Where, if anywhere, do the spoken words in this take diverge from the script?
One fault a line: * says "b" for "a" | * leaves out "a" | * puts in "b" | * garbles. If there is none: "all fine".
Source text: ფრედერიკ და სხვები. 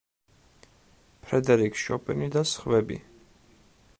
* puts in "შოპენი"